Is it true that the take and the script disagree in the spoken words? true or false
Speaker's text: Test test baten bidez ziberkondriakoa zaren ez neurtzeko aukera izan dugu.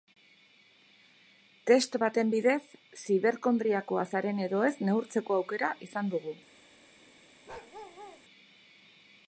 true